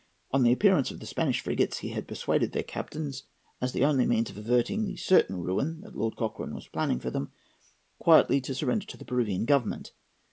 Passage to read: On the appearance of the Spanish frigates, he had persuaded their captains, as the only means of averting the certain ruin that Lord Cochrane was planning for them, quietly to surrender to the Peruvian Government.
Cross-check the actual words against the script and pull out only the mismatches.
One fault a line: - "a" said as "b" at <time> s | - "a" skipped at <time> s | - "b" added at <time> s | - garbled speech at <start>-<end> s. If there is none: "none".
none